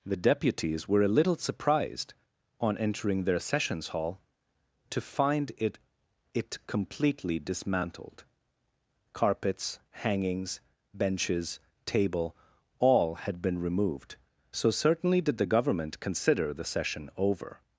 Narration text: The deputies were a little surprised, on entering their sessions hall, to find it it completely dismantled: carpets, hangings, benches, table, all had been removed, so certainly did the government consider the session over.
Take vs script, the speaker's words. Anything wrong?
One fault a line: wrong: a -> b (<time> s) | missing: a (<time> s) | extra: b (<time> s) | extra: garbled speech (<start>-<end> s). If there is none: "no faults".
no faults